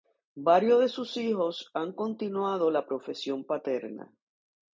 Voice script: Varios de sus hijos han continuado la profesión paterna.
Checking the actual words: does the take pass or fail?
pass